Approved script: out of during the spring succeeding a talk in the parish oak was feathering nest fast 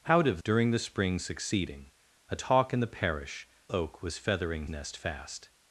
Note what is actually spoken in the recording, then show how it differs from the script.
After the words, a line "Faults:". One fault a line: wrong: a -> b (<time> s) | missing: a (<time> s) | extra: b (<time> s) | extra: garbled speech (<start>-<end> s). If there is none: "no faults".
out of during the spring succeeding a talk in the parish oak was feathering nest fast
Faults:
no faults